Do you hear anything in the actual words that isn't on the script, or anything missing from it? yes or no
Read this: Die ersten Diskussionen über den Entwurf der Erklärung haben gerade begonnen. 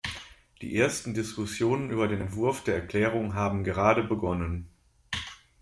no